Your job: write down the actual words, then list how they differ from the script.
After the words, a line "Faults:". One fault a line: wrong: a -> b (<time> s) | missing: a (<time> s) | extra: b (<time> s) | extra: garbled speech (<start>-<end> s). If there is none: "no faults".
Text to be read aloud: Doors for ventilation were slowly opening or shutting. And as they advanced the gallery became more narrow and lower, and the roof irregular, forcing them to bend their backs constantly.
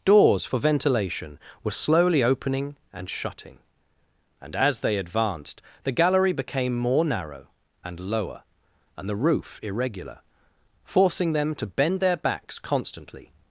Doors for ventilation were slowly opening and shutting. And as they advanced the gallery became more narrow and lower, and the roof irregular, forcing them to bend their backs constantly.
Faults:
wrong: or -> and (2.9 s)